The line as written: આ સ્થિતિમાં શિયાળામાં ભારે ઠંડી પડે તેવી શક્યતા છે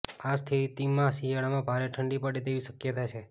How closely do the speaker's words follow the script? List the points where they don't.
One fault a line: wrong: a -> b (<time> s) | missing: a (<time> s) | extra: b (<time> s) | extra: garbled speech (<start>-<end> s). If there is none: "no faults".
no faults